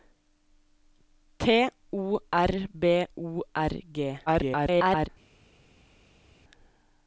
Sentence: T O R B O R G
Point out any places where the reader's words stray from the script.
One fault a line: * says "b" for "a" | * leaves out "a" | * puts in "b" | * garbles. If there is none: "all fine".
* garbles